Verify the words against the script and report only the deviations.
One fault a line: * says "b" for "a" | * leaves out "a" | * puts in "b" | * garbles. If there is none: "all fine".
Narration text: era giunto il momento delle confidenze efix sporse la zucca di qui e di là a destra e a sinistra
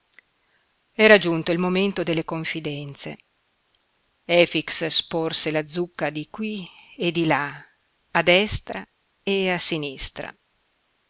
all fine